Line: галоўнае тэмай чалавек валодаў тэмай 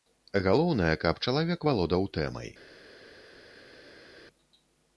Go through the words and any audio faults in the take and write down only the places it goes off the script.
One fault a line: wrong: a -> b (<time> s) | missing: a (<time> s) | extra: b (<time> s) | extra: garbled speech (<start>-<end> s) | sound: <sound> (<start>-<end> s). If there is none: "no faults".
wrong: тэмай -> каб (1.0 s)